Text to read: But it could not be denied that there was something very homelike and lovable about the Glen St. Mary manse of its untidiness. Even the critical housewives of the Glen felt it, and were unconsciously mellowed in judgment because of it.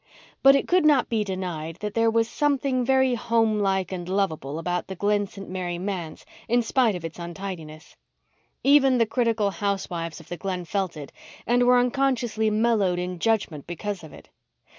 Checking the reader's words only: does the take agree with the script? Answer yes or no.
no